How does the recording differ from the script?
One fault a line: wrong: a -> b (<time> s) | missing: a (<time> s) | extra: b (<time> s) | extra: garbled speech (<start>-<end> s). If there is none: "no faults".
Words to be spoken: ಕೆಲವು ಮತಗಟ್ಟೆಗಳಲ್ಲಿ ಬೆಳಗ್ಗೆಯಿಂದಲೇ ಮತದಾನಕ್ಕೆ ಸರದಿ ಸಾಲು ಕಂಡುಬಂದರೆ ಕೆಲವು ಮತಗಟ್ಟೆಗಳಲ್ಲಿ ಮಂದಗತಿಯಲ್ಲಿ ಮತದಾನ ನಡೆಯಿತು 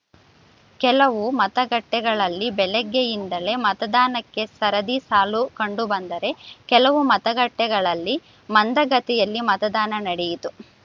no faults